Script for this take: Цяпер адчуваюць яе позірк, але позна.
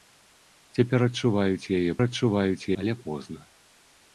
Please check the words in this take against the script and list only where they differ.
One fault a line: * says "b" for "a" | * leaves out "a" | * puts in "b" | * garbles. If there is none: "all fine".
* says "адчуваюць" for "позірк"